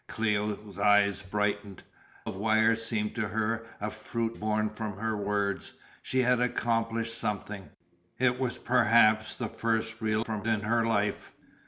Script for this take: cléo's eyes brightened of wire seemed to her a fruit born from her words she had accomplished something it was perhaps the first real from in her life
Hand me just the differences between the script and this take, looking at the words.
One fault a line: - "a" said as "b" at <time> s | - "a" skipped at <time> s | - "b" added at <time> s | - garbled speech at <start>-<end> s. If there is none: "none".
none